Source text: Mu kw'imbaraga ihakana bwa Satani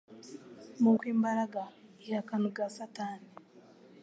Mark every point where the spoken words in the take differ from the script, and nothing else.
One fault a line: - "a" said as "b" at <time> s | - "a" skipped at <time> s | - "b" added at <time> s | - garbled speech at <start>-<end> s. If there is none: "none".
none